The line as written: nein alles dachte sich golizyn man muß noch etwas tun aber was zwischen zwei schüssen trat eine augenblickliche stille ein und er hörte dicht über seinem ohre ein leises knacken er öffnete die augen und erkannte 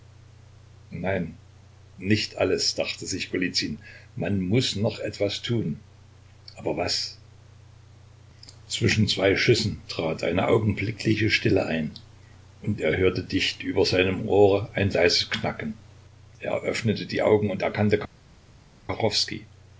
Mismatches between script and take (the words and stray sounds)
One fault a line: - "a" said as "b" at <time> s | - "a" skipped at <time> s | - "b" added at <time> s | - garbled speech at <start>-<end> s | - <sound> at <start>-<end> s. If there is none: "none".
- "nicht" added at 2.0 s